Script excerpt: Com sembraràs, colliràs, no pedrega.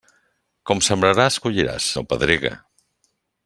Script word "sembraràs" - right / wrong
right